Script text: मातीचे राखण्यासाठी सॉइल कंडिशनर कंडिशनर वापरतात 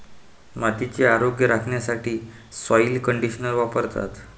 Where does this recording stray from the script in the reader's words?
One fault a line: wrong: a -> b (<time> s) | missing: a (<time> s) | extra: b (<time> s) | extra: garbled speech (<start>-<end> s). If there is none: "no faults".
extra: आरोग्य (1.1 s)
missing: कंडिशनर (3.5 s)